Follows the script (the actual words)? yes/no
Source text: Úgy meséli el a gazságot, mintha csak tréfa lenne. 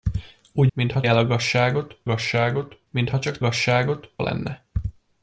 no